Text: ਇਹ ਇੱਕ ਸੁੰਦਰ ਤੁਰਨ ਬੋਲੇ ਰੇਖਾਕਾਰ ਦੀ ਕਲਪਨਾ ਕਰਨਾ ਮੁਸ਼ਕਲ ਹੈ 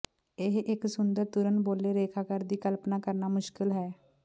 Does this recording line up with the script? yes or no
yes